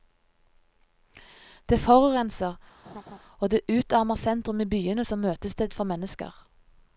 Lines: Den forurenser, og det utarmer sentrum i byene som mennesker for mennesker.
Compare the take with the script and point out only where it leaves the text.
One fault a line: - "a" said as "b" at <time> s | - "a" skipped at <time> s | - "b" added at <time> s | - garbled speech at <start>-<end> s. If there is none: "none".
- "Den" said as "Det" at 1.7 s
- "mennesker" said as "møtested" at 5.2 s